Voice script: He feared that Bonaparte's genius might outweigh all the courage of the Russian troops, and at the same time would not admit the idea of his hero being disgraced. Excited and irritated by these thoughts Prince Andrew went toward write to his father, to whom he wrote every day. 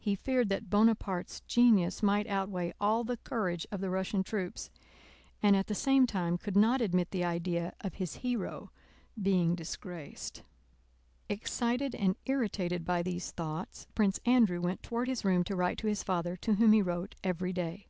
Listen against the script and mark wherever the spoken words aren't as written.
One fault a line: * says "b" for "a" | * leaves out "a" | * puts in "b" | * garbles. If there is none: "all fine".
* says "could" for "would"
* puts in "his room to"